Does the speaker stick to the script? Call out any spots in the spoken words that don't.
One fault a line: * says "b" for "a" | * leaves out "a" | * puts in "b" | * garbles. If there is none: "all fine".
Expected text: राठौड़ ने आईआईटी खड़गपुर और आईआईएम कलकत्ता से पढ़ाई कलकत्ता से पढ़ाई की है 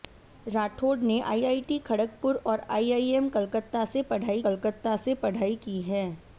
all fine